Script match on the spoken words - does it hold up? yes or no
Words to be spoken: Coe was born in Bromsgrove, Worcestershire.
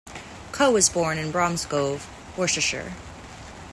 yes